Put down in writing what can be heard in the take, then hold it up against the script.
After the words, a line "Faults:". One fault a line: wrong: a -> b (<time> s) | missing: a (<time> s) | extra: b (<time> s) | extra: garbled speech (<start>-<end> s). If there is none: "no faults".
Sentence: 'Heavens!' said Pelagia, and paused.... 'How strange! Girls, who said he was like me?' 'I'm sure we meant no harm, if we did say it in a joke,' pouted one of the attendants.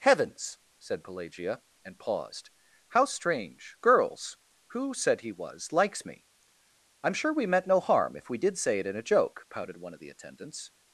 'Heavens!' said Pelagia, and paused.... 'How strange! Girls, who said he was likes me?' 'I'm sure we meant no harm, if we did say it in a joke,' pouted one of the attendants.
Faults:
wrong: like -> likes (5.7 s)